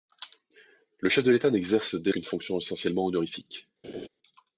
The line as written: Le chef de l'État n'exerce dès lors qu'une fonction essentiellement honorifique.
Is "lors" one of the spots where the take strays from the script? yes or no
yes